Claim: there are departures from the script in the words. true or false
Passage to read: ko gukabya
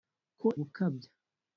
false